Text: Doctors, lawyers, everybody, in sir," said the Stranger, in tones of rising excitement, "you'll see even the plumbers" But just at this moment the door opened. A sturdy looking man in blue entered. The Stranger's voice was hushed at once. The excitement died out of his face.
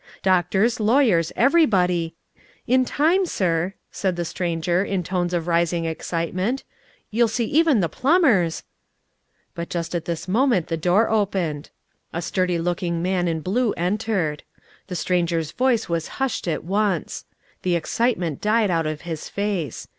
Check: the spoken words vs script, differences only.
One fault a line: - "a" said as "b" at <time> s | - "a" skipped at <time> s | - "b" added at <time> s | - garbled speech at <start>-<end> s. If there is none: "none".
- "time" added at 2.9 s